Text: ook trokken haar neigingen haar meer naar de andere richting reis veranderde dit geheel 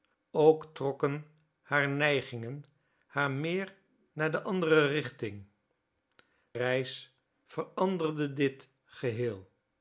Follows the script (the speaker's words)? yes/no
yes